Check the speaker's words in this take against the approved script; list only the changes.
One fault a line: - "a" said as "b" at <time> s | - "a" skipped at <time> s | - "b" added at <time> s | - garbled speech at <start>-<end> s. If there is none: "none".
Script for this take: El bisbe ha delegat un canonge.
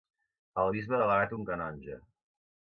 none